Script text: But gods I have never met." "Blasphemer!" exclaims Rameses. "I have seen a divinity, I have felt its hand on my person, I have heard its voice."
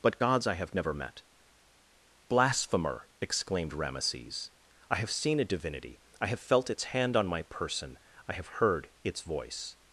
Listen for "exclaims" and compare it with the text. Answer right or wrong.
wrong